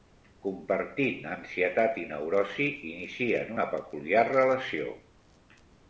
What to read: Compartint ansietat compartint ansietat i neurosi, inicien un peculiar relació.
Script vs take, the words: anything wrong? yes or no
yes